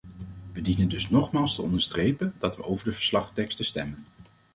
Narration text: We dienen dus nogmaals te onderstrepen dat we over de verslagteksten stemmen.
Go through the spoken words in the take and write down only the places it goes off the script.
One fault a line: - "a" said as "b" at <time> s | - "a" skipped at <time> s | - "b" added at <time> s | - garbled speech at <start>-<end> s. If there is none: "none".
none